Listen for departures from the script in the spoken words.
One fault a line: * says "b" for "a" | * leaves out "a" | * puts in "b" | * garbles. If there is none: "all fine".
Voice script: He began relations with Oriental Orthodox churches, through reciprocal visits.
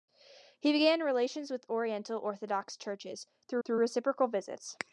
* puts in "through"